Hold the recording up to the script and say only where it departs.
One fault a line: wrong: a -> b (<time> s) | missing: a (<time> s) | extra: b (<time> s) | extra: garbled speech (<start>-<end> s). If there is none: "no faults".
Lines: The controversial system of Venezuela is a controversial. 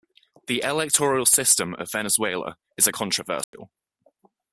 wrong: controversial -> electoral (0.6 s)